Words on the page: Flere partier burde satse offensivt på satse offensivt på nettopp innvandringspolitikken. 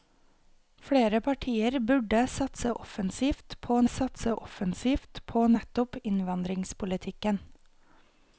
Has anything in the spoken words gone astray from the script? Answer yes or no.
no